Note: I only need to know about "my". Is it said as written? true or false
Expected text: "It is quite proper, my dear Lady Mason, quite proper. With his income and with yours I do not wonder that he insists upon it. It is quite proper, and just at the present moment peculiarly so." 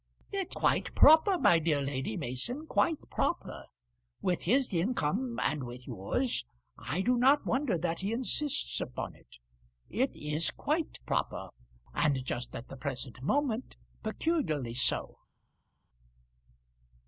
true